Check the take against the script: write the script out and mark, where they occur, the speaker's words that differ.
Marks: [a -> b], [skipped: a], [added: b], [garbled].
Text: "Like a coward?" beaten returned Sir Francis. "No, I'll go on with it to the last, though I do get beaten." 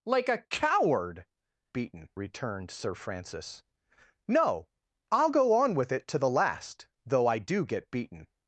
"Like a coward?" beaten returned Sir Francis. "No, I'll go on with it to the last, though I do get beaten."